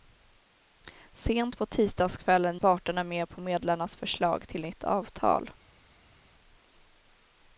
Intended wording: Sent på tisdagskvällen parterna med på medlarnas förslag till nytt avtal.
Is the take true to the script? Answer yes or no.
yes